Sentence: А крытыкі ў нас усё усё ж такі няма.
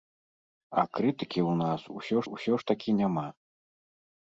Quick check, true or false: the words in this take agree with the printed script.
true